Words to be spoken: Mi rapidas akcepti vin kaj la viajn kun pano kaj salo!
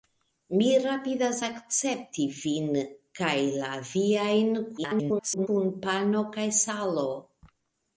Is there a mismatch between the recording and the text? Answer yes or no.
yes